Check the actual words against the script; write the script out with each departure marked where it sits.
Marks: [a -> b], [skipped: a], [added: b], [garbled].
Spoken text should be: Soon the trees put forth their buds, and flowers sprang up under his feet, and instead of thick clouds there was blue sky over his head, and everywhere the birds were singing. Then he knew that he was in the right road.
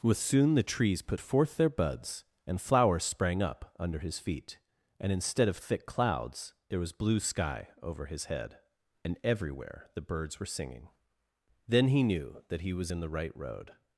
[added: with] Soon the trees put forth their buds, and flowers sprang up under his feet, and instead of thick clouds there was blue sky over his head, and everywhere the birds were singing. Then he knew that he was in the right road.